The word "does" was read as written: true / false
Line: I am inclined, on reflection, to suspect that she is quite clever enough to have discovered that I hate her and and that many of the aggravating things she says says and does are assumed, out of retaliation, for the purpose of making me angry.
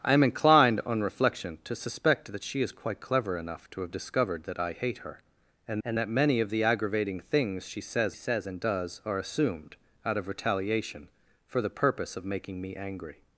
true